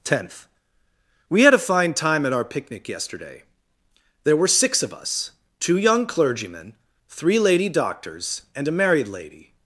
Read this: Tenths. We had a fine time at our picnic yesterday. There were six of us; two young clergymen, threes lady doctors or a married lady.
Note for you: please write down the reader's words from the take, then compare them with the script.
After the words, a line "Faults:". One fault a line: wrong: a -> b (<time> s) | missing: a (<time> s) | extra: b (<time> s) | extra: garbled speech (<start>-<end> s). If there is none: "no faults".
Tenth. We had a fine time at our picnic yesterday. There were six of us; two young clergymen, three lady doctors and a married lady.
Faults:
wrong: Tenths -> Tenth (0.0 s)
wrong: threes -> three (7.1 s)
wrong: or -> and (8.6 s)